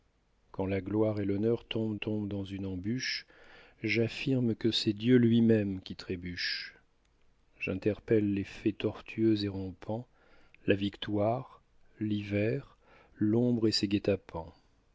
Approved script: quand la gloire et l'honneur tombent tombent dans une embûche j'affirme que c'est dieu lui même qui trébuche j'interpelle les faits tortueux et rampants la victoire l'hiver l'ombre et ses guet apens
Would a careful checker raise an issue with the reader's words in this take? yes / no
no